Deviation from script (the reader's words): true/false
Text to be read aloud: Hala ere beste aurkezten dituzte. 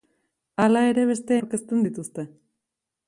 false